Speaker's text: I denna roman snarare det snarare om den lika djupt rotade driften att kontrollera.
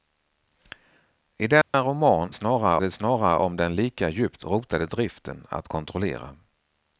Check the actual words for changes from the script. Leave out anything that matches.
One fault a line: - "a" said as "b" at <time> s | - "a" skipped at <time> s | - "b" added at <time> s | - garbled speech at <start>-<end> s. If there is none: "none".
none